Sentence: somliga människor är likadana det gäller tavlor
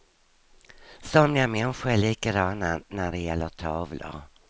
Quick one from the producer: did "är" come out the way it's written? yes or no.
yes